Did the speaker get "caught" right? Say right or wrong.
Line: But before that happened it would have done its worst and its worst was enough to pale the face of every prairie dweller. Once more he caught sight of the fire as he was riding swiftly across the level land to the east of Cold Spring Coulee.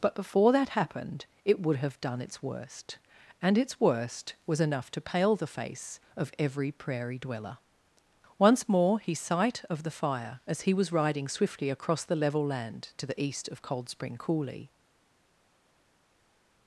wrong